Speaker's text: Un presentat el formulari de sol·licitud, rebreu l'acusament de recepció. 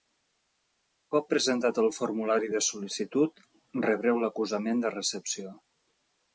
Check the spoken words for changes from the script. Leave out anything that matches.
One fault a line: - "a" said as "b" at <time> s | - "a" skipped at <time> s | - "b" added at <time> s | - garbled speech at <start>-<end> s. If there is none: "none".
- "cop" added at 1.1 s